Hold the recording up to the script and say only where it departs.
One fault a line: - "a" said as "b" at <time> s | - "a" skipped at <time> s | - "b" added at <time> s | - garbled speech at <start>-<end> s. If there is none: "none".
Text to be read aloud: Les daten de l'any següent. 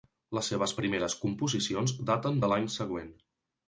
- "seves primeres composicions" added at 0.5 s